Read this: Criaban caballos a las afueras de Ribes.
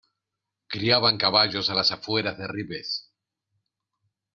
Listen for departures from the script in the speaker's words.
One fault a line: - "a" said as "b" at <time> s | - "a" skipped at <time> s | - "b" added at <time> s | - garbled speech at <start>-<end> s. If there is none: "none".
none